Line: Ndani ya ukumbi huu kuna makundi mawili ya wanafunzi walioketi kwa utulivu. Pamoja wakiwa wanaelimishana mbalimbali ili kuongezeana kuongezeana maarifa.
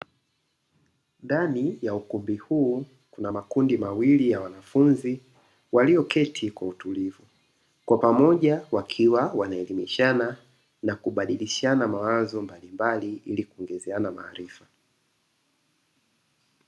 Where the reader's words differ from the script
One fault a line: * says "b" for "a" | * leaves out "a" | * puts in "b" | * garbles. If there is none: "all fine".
* puts in "Kwa"
* puts in "na kubadilishana mawazo"
* leaves out "kuongezeana"